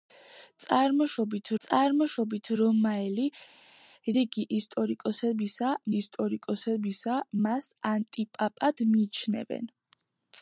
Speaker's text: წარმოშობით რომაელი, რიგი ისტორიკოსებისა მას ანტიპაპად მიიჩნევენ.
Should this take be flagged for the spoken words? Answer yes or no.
yes